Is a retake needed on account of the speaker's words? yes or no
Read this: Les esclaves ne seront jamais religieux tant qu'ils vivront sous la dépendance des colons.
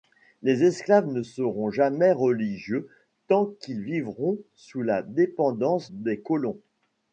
no